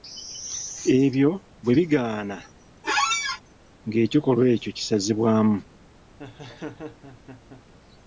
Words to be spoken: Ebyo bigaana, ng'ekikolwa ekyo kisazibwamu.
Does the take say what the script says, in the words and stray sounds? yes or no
no